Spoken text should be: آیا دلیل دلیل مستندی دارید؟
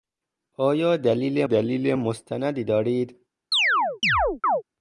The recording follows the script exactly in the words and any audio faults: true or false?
false